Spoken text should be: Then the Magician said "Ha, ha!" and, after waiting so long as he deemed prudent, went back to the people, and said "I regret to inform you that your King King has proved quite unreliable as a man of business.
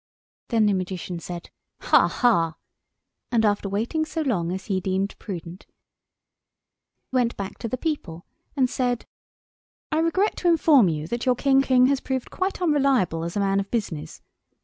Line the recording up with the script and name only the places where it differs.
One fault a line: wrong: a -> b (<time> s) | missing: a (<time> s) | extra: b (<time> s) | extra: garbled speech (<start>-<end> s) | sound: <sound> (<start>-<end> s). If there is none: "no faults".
no faults